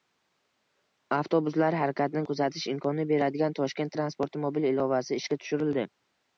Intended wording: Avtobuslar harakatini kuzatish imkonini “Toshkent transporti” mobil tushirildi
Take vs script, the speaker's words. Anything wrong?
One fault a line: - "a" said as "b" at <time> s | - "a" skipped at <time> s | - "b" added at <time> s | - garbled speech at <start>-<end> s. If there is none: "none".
- "beradigan" added at 3.1 s
- "ilovasi ishga" added at 4.7 s